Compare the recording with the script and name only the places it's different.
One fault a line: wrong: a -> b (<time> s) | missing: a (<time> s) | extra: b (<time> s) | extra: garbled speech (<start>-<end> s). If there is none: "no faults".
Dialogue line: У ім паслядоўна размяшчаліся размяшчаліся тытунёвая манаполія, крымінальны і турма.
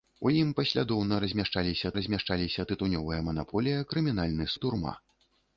no faults